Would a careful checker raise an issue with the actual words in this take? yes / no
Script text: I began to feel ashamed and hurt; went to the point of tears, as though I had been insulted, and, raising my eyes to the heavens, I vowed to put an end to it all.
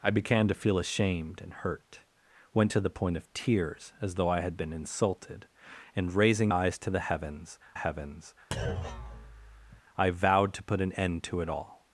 yes